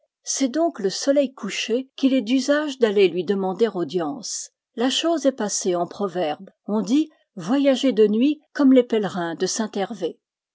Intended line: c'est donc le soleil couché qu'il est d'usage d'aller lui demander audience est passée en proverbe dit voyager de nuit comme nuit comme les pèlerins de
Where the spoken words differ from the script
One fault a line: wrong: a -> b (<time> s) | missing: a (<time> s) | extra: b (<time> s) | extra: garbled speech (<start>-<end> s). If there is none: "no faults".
extra: la chose (4.8 s)
extra: on (6.7 s)
missing: nuit comme (8.7 s)